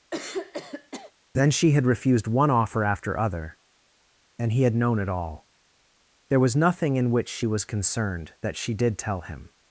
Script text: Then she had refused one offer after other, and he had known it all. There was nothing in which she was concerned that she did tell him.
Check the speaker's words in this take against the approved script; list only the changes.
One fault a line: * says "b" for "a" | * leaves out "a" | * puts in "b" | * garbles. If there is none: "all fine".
all fine